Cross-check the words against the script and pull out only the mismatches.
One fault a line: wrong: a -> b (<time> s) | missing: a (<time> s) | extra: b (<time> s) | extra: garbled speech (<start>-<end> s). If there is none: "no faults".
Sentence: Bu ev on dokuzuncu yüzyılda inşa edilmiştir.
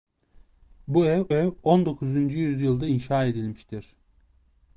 extra: ev (1.3 s)